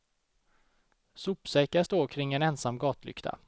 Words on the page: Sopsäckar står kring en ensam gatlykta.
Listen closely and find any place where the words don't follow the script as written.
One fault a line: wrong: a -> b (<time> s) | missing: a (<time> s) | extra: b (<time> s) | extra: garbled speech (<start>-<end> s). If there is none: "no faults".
no faults